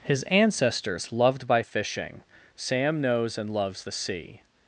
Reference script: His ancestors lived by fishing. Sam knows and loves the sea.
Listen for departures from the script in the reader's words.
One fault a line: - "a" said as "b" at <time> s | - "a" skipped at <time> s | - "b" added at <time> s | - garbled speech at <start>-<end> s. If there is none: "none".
- "lived" said as "loved" at 1.1 s